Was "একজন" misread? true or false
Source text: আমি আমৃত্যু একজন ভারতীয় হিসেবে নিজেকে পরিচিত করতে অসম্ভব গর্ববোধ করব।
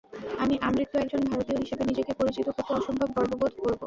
false